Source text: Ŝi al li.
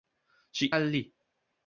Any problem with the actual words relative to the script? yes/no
no